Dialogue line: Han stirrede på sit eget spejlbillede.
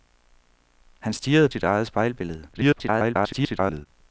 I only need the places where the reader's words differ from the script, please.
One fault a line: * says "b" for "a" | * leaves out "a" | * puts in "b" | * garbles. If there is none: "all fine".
* leaves out "på"
* garbles